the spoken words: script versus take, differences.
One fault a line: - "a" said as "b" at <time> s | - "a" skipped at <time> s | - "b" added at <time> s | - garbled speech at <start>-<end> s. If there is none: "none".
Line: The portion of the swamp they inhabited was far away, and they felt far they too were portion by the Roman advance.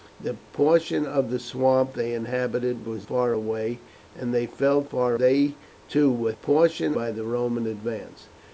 none